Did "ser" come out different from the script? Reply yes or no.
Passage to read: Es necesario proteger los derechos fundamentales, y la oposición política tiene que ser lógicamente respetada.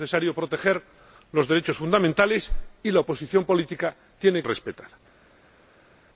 yes